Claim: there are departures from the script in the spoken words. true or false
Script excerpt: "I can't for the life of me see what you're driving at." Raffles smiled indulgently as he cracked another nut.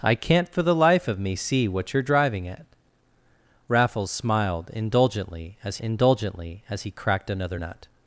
true